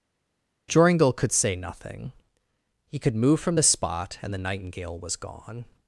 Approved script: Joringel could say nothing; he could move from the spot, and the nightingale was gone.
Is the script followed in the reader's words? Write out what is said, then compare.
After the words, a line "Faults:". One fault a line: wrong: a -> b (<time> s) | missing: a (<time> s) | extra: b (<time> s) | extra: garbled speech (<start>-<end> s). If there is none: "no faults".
Joringel could say nothing; he could move from the spot, and the nightingale was gone.
Faults:
no faults